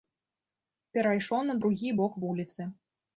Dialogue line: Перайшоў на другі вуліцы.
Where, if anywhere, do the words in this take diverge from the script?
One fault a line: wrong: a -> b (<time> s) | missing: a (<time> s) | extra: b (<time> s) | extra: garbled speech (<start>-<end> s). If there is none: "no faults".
extra: бок (2.0 s)